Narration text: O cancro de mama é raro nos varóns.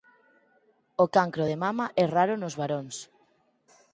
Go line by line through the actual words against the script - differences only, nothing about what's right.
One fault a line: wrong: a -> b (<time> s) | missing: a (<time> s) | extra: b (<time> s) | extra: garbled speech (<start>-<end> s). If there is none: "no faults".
no faults